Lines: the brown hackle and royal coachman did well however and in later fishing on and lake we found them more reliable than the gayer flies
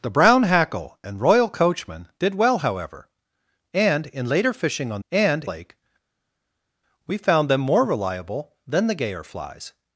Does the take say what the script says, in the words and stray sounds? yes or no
yes